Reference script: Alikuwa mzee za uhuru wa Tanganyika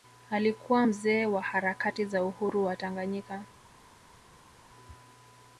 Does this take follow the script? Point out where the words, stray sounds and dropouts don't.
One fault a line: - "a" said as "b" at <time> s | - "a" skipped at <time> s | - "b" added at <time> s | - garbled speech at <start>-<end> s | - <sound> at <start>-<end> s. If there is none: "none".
- "wa harakati" added at 1.3 s